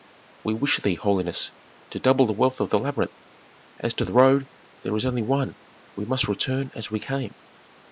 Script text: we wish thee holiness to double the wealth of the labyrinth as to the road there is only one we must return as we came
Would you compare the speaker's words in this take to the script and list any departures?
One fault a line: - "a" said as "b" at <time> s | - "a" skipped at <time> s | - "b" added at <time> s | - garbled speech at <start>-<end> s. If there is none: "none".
none